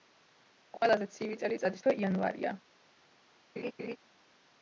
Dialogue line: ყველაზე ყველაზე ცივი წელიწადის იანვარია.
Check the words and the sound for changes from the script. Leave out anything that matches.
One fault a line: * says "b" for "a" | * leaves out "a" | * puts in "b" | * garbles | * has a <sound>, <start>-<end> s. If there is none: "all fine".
* leaves out "ყველაზე"
* puts in "თვე"
* has a laugh, 3.6-4.0 s